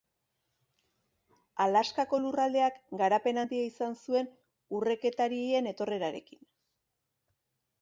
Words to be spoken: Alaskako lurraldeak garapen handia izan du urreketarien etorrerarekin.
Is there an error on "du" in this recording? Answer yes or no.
yes